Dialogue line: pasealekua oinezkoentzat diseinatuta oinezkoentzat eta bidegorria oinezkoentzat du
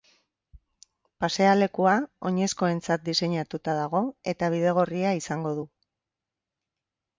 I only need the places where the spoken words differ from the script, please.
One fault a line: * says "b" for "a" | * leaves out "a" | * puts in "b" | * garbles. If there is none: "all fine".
* says "dago" for "oinezkoentzat"
* says "izango" for "oinezkoentzat"